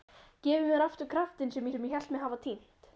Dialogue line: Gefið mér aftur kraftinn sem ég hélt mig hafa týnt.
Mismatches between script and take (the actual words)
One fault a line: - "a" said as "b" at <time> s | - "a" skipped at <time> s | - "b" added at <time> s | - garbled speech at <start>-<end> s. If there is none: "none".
- "sem" added at 1.7 s